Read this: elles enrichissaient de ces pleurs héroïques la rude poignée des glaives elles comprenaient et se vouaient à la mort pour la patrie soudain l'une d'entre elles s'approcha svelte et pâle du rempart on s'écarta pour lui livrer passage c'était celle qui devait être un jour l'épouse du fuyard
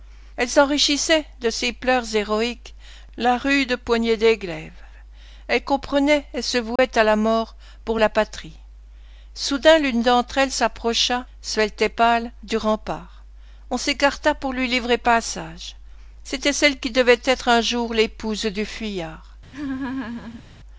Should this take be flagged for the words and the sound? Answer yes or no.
yes